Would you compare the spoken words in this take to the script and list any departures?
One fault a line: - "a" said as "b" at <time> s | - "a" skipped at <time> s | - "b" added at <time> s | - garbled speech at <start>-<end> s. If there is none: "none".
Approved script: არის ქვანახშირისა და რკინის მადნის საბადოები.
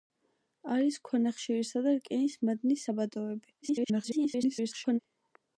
- garbled speech at 3.6-5.0 s